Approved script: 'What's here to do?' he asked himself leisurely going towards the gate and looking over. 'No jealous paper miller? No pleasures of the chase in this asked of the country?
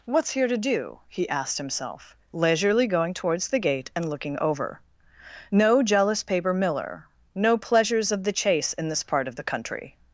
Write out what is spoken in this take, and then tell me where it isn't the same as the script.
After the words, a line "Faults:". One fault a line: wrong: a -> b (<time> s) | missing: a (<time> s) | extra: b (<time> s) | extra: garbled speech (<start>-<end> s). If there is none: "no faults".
'What's here to do?' he asked himself leisurely going towards the gate and looking over. 'No jealous paper miller? No pleasures of the chase in this part of the country?
Faults:
wrong: asked -> part (9.0 s)